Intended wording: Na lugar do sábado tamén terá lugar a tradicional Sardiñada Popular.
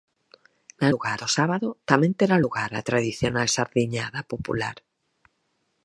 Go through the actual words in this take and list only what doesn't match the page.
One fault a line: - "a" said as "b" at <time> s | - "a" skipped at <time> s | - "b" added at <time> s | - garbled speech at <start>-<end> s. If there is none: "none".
none